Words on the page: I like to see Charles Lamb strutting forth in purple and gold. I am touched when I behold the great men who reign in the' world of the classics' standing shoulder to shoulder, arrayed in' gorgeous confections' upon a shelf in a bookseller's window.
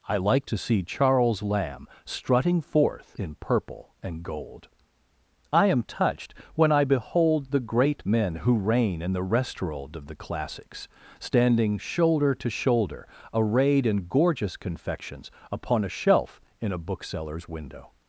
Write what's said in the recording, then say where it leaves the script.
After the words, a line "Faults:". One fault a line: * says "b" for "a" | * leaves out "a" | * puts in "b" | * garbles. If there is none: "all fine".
I like to see Charles Lamb strutting forth in purple and gold. I am touched when I behold the great men who reign in the' restaurant of the classics' standing shoulder to shoulder, arrayed in' gorgeous confections' upon a shelf in a bookseller's window.
Faults:
* says "restaurant" for "world"